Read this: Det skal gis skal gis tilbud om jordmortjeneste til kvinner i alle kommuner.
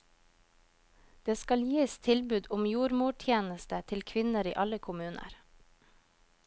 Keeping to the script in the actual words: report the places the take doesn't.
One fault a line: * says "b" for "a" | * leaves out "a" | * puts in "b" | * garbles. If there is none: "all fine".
* leaves out "skal gis"